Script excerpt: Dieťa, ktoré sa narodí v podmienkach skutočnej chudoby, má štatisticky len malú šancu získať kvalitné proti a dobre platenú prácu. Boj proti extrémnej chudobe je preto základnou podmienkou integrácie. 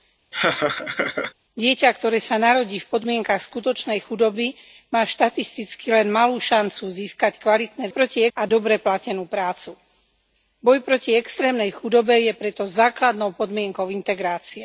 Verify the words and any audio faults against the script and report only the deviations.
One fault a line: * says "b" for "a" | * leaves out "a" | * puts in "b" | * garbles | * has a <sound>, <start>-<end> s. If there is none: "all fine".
* has a laugh, 0.3-1.3 s